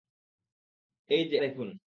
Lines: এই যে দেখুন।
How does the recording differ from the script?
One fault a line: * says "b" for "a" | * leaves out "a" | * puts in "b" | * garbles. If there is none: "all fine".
all fine